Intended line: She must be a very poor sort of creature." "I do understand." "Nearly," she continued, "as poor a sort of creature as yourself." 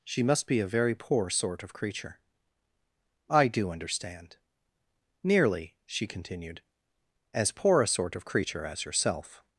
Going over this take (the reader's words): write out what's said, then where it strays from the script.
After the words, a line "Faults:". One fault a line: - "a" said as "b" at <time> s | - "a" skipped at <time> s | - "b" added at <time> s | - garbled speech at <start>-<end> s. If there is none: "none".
She must be a very poor sort of creature." "I do understand." "Nearly," she continued, "as poor a sort of creature as yourself."
Faults:
none